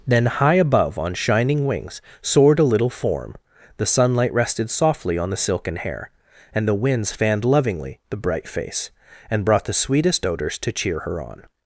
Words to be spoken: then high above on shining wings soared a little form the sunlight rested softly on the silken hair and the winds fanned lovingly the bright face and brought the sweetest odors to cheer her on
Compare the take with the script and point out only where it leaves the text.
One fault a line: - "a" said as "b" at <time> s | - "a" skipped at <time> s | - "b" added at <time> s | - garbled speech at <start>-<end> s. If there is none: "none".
none